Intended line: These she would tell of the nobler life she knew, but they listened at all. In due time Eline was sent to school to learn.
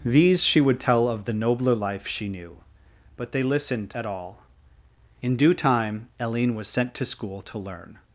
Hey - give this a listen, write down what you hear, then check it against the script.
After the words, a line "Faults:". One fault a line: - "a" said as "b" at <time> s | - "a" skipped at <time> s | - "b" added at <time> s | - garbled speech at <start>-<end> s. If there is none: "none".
These she would tell of the nobler life she knew, but they listened at all. In due time Eline was sent to school to learn.
Faults:
none